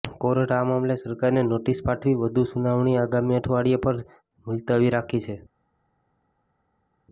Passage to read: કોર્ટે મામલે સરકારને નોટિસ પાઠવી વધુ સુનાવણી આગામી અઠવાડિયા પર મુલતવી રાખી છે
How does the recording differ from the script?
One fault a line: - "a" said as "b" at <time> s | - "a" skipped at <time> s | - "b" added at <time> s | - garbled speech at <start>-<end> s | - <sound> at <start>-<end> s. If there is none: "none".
- "આ" added at 0.5 s